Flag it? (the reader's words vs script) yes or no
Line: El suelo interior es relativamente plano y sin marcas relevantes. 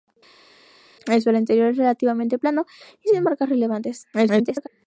yes